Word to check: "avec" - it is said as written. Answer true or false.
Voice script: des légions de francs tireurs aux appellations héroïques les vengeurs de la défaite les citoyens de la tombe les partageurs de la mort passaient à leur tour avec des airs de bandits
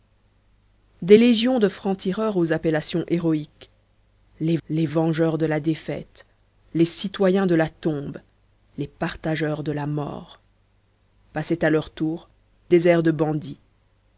false